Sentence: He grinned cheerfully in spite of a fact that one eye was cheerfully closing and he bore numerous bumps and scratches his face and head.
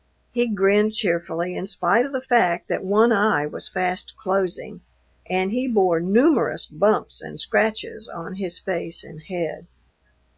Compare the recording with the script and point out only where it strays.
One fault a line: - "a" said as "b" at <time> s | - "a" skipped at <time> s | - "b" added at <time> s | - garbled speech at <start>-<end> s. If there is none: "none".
- "a" said as "the" at 2.1 s
- "cheerfully" said as "fast" at 3.7 s
- "on" added at 8.1 s